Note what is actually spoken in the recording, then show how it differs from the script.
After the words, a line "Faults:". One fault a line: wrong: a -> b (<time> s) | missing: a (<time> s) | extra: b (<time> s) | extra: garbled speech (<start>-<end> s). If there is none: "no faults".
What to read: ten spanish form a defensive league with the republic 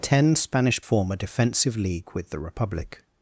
ten spanish form a defensive league with the republic
Faults:
no faults